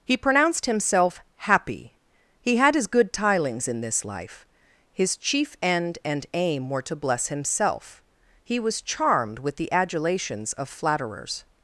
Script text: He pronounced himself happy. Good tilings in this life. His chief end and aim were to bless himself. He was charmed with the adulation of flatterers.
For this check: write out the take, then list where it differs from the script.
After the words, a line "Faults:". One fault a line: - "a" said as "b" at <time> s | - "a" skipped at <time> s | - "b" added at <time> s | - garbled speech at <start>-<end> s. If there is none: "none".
He pronounced himself happy. He had his good tilings in this life. His chief end and aim were to bless himself. He was charmed with the adulations of flatterers.
Faults:
- "He had his" added at 2.4 s
- "adulation" said as "adulations" at 9.7 s